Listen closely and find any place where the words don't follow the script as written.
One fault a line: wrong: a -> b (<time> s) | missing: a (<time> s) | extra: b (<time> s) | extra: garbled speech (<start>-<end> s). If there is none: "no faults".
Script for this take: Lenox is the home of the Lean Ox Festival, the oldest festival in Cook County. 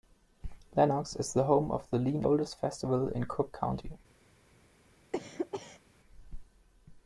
missing: Ox Festival the (2.2 s)